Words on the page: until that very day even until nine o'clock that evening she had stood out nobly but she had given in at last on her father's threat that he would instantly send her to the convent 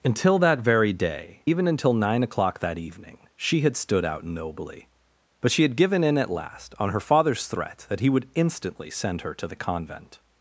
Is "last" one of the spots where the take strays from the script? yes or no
no